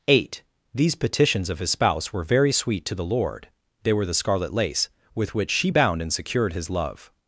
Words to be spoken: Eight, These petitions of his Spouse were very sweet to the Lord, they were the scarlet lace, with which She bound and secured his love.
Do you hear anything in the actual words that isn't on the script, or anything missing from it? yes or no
no